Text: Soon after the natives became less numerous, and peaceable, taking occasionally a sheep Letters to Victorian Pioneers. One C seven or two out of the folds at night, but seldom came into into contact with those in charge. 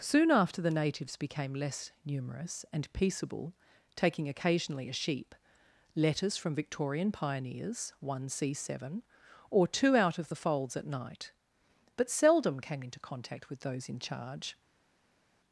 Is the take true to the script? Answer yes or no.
no